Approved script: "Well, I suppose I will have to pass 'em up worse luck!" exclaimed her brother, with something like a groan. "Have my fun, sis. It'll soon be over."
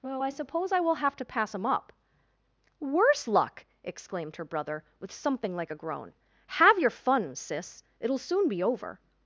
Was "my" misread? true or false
true